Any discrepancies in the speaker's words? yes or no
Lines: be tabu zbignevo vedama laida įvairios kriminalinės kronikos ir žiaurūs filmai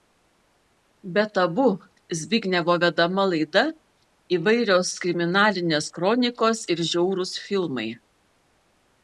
no